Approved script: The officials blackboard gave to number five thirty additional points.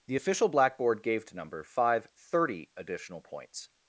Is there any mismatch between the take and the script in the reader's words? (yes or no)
yes